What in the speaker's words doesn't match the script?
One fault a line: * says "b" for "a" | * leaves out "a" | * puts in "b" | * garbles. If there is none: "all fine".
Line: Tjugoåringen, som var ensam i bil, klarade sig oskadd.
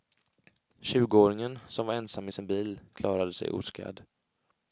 * puts in "sin"